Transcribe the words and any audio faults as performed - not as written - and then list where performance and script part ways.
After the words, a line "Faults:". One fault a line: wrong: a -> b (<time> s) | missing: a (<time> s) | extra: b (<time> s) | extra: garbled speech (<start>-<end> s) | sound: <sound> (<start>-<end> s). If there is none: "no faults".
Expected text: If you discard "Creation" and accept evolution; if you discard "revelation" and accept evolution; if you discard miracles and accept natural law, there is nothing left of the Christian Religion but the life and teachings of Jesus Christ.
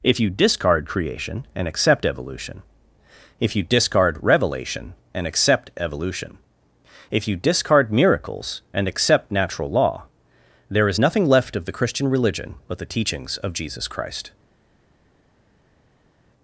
If you discard "Creation" and accept evolution; if you discard "revelation" and accept evolution; if you discard miracles and accept natural law, there is nothing left of the Christian Religion but the teachings of Jesus Christ.
Faults:
missing: life and (12.9 s)